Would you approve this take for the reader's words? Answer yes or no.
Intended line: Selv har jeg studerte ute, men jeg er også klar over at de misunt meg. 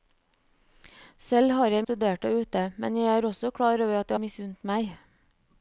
yes